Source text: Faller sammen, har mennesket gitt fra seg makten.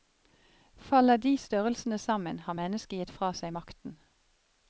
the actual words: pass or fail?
fail